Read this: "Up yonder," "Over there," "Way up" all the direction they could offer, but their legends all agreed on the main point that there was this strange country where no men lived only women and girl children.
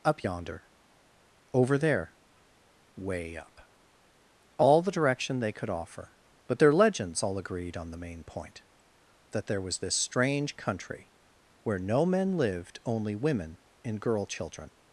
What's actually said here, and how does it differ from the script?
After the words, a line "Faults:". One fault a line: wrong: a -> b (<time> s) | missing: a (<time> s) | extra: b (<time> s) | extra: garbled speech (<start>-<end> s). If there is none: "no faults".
"Up yonder," "Over there," "Way up" all the direction they could offer, but their legends all agreed on the main point that there was this strange country where no men lived only women and girl children.
Faults:
no faults